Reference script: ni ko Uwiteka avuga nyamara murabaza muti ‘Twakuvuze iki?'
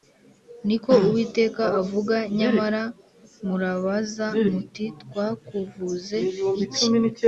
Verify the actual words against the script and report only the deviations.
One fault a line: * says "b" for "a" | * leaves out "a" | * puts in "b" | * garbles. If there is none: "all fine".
all fine